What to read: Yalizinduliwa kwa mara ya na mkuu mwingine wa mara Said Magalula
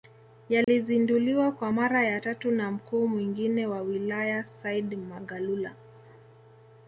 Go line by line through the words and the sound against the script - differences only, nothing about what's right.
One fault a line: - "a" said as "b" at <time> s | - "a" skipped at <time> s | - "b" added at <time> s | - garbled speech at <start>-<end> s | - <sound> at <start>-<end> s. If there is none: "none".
- dropout at 0.6-0.7 s
- "tatu" added at 2.2 s
- "mara" said as "wilaya" at 3.8 s